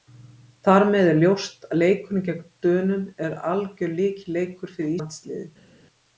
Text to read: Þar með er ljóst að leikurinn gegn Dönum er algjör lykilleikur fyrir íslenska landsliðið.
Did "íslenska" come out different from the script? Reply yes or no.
yes